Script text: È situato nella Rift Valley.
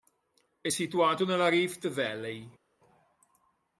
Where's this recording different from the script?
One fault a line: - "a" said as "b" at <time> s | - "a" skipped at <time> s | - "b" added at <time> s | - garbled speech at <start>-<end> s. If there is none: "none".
none